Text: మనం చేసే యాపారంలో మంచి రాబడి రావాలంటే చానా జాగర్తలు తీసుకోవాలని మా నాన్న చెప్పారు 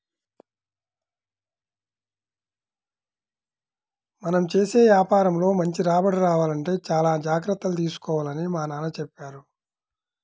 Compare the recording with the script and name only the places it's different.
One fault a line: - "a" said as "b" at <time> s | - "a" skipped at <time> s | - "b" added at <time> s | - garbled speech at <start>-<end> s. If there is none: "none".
none